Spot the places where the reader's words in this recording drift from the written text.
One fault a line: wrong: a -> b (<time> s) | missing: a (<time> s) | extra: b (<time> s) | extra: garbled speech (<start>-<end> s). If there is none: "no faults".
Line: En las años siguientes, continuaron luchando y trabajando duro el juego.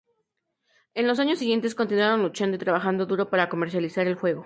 wrong: las -> los (1.1 s)
extra: para comercializar (3.3 s)